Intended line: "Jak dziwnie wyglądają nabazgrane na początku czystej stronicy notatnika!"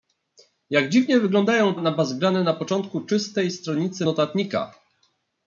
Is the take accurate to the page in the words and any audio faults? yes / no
yes